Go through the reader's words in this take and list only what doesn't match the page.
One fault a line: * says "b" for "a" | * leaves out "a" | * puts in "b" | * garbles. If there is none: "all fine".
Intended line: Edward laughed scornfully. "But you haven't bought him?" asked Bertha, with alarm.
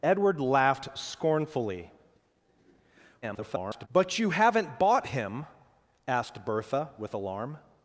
* garbles